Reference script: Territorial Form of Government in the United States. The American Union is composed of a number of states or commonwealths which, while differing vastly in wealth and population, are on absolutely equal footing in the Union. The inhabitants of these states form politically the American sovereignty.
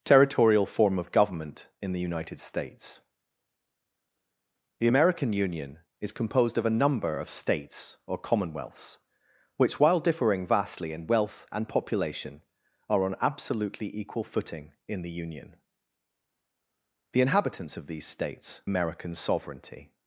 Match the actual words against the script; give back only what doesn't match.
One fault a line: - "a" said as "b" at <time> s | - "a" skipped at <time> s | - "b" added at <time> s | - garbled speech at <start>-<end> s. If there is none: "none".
- "form politically the" skipped at 18.6 s